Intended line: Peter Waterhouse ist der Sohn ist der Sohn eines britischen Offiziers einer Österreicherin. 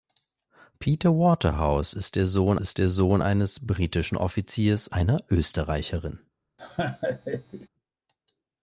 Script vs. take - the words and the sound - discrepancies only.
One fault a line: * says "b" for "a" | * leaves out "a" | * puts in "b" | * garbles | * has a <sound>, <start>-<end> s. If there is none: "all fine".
* has a laugh, 6.6-7.7 s